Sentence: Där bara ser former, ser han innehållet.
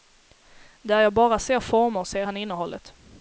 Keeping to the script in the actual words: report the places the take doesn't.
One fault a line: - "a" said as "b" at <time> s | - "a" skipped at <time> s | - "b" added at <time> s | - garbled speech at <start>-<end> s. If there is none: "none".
- "jag" added at 1.0 s